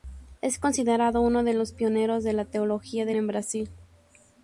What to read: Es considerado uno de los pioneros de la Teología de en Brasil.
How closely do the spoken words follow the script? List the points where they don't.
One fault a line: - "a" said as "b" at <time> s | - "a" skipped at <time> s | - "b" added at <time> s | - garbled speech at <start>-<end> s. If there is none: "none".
none